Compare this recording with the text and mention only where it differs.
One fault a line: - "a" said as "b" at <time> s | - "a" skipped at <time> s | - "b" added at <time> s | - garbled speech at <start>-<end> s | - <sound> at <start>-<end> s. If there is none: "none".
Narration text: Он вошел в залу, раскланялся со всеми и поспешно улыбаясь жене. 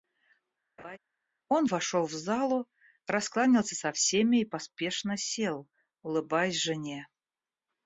- laugh at 0.8-1.0 s
- "сел" added at 5.2 s